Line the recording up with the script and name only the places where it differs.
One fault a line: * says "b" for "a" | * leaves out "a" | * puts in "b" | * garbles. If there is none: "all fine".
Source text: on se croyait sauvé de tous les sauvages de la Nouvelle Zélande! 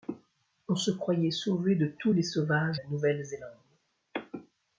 * leaves out "de"